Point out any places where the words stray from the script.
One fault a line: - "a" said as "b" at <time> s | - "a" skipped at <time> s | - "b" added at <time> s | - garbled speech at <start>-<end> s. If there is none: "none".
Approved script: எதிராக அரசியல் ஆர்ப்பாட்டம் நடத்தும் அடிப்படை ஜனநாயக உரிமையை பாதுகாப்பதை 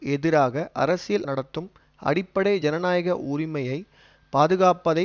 - "ஆர்ப்பாட்டம்" skipped at 1.2 s